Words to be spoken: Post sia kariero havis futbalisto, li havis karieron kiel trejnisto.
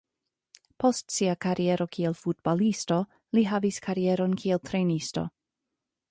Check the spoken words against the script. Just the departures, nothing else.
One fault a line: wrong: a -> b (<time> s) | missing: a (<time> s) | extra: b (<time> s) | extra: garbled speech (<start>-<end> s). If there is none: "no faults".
wrong: havis -> kiel (2.0 s)